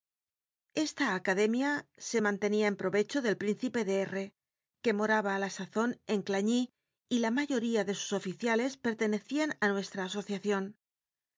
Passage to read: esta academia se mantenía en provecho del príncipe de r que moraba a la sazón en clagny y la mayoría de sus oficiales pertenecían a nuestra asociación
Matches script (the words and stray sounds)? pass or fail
pass